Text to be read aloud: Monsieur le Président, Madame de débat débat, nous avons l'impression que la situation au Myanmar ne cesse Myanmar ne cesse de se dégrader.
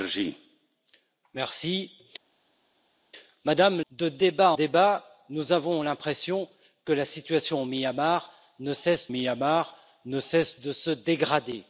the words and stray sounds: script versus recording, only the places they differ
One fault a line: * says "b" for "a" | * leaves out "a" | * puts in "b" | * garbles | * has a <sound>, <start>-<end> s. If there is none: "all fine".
all fine